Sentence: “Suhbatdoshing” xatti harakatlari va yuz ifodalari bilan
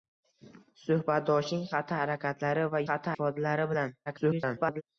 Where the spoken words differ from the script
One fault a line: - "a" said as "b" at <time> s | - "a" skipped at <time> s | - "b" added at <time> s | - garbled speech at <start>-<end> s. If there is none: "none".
- "yuz" said as "xatti" at 2.9 s
- garbled speech at 4.1-4.8 s